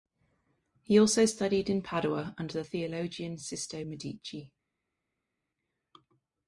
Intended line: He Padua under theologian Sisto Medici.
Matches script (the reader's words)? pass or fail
fail